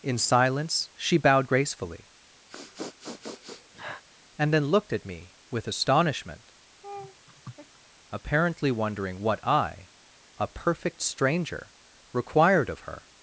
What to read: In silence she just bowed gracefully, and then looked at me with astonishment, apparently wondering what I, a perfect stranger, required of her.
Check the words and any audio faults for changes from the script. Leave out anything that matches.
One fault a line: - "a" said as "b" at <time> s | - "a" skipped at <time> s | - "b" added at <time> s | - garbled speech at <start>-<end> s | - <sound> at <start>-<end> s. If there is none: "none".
- "just" skipped at 1.2 s
- sniff at 2.5-4.0 s
- laugh at 6.8-7.8 s